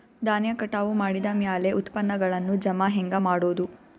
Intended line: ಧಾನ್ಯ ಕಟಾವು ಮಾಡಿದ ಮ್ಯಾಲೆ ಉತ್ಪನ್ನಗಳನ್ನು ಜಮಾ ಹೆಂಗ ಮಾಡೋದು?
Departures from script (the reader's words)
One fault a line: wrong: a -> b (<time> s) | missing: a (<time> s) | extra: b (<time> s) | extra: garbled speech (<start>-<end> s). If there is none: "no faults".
no faults